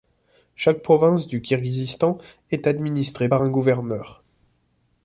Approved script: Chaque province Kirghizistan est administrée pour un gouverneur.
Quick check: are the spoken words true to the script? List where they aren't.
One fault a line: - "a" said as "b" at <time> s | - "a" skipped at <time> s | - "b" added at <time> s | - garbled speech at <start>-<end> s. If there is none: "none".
- "du" added at 1.3 s
- "pour" said as "par" at 3.2 s